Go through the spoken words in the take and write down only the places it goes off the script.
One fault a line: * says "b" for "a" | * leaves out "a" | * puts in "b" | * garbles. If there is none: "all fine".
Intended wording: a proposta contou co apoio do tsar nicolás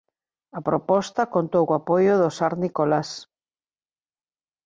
all fine